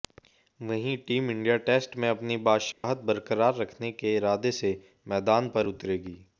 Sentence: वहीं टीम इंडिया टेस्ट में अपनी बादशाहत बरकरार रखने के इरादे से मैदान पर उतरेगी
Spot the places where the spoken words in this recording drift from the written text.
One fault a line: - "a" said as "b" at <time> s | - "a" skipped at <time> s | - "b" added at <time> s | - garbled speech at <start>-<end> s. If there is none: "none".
none